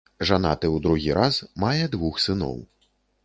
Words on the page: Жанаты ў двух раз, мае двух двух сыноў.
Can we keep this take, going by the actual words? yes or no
no